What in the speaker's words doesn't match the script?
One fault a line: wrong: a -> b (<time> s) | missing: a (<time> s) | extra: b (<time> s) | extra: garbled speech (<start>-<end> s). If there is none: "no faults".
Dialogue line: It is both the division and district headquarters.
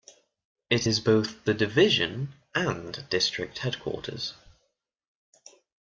no faults